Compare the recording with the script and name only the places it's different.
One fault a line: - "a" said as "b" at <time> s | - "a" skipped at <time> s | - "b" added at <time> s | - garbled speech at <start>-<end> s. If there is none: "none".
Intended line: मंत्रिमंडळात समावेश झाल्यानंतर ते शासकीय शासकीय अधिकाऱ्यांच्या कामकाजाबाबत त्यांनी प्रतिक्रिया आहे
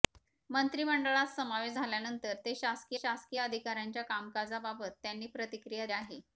none